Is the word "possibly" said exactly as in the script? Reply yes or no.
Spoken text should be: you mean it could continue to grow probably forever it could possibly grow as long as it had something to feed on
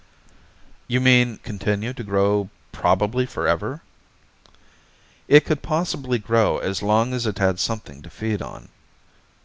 yes